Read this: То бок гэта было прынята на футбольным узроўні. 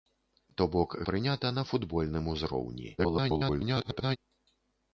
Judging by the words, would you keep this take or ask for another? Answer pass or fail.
fail